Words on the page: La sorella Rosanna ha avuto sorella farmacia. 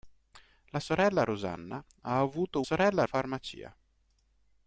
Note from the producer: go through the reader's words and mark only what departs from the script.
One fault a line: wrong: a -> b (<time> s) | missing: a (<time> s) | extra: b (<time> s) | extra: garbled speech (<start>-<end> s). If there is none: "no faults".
no faults